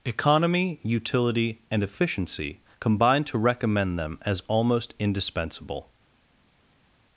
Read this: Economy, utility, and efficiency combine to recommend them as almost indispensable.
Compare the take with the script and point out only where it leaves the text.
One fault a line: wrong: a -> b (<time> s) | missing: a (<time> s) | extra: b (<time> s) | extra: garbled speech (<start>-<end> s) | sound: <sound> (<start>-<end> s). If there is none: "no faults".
no faults